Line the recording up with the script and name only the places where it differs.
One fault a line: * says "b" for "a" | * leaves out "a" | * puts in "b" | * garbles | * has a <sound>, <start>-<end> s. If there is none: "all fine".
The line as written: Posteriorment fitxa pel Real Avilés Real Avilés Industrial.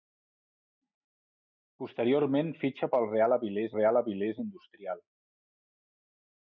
all fine